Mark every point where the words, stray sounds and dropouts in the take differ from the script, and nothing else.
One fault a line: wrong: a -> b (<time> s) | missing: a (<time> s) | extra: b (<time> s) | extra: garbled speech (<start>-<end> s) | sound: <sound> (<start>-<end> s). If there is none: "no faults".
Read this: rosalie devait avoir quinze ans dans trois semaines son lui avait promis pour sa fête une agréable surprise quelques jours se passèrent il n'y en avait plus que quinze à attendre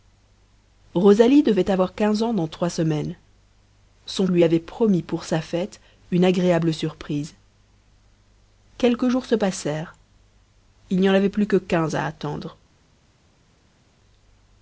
no faults